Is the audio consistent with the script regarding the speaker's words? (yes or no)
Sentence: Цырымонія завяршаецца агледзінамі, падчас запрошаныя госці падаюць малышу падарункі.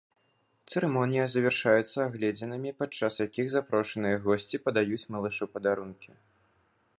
no